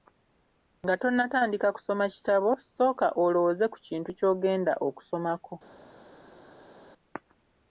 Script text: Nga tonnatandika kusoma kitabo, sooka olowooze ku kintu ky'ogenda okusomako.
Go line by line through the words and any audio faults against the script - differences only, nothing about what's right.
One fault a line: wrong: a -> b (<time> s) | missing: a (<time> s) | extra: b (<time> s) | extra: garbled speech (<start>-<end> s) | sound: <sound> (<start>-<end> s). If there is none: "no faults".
no faults